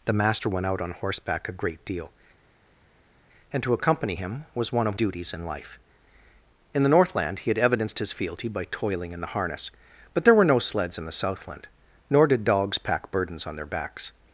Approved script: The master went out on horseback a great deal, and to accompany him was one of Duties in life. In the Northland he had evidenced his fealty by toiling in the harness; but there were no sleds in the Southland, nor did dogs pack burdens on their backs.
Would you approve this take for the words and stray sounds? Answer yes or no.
yes